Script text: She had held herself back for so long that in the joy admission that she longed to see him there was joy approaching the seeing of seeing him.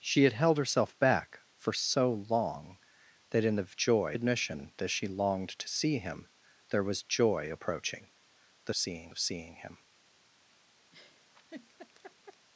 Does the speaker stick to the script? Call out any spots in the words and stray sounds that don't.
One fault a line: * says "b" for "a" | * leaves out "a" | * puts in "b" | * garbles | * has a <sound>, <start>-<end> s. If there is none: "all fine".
* has a laugh, 10.9-12.5 s